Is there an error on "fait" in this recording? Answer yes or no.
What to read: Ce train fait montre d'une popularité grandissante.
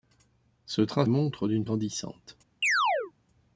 yes